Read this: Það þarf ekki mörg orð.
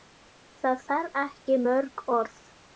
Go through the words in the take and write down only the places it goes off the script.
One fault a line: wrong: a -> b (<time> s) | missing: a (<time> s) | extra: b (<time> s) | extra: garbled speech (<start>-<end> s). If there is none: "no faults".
no faults